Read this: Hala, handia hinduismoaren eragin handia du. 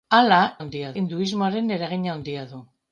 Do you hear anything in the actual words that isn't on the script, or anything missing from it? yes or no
no